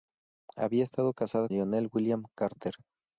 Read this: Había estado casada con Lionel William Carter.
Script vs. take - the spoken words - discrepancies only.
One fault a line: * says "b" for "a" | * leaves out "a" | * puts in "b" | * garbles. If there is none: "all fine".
* leaves out "con"